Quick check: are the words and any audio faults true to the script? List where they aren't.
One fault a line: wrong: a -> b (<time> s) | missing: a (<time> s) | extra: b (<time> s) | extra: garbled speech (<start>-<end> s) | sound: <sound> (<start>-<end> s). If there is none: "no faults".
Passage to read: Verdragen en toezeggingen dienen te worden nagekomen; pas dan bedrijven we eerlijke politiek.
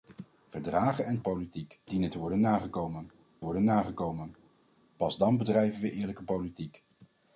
wrong: toezeggingen -> politiek (1.2 s)
extra: worden nagekomen (3.4 s)